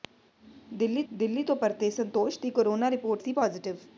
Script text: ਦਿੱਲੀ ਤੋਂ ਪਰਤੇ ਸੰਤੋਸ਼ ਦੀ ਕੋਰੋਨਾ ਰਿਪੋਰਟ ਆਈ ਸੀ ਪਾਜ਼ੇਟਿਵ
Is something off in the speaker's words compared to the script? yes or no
yes